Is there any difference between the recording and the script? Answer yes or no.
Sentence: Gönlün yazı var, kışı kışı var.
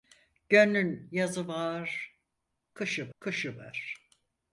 no